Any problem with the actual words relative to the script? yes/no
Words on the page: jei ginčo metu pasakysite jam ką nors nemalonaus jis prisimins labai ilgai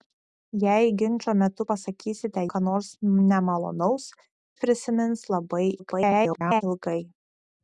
yes